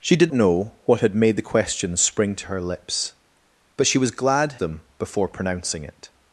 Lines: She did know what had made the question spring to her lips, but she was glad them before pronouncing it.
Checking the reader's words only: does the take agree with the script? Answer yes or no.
yes